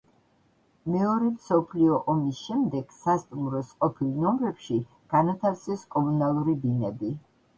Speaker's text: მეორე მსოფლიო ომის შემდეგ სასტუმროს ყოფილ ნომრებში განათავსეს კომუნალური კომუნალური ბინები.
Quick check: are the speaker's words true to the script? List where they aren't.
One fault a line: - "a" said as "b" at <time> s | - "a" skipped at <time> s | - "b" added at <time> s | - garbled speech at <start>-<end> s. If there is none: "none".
- "კომუნალური" skipped at 6.6 s